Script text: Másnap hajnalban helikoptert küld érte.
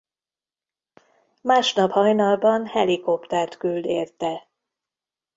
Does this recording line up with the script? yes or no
yes